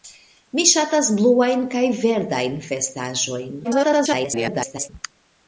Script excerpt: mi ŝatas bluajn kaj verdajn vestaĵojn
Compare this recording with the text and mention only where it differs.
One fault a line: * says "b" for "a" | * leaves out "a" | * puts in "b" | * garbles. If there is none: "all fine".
* garbles